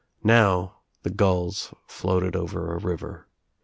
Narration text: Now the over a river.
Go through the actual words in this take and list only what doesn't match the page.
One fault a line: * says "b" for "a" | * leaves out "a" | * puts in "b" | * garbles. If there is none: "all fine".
* puts in "gulls floated"